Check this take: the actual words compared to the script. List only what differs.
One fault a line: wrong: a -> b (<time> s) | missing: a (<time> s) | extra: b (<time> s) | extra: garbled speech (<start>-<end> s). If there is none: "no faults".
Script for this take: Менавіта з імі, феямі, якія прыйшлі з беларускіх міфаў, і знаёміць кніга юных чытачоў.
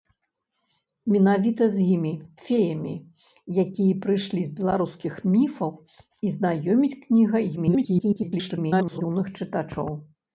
extra: garbled speech (7.6-9.0 s)